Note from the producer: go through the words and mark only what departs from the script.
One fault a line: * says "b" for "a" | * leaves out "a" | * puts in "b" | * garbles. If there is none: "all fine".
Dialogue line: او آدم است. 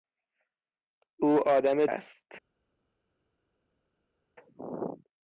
all fine